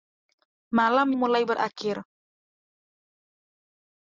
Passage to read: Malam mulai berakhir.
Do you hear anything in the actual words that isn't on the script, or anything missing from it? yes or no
no